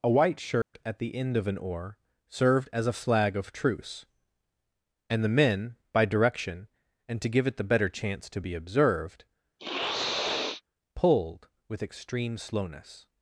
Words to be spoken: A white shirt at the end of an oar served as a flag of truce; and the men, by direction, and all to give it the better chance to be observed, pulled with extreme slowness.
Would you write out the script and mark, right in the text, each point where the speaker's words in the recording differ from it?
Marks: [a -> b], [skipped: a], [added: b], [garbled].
A white shirt at the end of an oar served as a flag of truce; and the men, by direction, and [skipped: all] to give it the better chance to be observed, pulled with extreme slowness.